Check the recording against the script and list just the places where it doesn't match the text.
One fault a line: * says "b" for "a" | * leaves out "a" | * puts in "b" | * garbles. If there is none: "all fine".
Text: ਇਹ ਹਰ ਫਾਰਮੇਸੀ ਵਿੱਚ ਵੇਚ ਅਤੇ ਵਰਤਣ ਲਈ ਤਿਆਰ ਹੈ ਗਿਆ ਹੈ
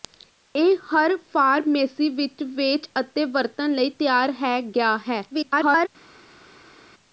* garbles